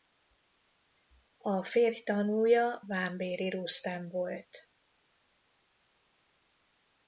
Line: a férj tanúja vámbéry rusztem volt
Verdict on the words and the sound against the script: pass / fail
pass